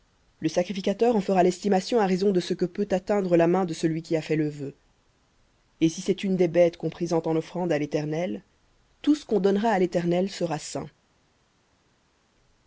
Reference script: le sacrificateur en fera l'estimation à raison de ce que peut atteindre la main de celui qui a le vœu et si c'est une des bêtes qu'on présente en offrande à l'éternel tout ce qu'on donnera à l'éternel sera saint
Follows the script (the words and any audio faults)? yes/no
no